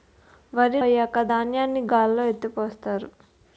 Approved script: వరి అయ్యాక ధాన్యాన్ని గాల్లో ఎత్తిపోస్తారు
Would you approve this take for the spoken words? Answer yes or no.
yes